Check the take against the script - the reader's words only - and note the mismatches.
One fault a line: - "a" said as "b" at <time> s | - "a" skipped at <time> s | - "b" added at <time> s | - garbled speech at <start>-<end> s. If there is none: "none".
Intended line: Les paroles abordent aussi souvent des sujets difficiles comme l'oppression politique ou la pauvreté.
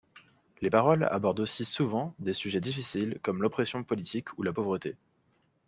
none